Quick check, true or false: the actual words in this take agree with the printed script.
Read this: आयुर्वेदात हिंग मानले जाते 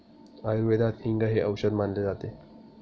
false